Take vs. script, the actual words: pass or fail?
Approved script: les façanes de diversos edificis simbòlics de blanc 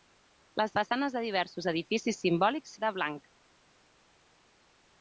pass